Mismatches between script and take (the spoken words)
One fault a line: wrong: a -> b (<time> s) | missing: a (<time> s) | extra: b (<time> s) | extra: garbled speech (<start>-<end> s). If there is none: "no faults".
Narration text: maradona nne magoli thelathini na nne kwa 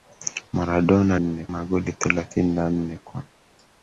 no faults